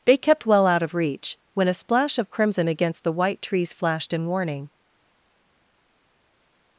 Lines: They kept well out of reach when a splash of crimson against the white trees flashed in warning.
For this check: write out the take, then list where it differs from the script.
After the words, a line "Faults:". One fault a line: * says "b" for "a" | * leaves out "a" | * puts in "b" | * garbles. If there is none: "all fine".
They kept well out of reach when a splash of crimson against the white trees flashed in warning.
Faults:
all fine